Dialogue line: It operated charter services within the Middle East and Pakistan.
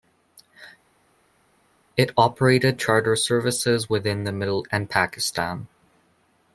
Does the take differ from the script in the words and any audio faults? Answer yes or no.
yes